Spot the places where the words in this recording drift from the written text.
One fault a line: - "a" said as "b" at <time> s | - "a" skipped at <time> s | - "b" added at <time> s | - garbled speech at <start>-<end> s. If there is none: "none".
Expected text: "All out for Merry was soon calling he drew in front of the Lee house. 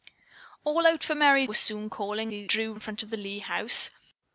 none